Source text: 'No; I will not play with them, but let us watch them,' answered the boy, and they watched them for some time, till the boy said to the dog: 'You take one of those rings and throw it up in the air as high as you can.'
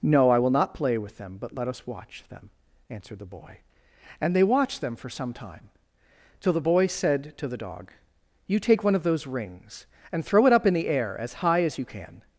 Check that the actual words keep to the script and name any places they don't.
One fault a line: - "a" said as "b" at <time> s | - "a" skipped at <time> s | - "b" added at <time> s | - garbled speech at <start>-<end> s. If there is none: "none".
none